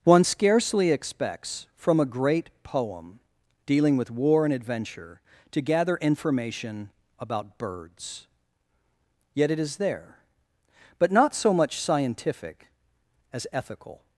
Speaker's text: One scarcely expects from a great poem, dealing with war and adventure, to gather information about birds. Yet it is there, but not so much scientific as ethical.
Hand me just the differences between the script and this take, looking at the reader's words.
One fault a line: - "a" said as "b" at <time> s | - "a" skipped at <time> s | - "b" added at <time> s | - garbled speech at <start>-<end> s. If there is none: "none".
none